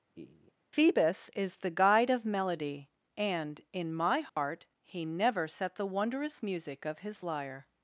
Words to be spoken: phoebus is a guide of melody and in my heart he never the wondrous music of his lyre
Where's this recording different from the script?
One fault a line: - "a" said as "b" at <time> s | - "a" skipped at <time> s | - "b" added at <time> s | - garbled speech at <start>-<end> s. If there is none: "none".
- "a" said as "the" at 1.6 s
- "set" added at 5.5 s